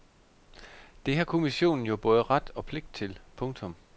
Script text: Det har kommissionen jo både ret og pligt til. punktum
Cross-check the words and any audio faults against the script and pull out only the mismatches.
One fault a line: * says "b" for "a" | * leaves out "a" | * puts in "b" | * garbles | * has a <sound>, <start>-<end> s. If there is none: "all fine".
all fine